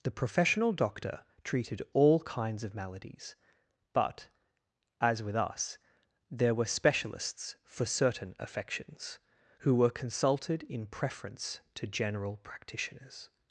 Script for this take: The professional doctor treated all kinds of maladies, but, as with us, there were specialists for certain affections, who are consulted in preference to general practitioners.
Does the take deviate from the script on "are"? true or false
true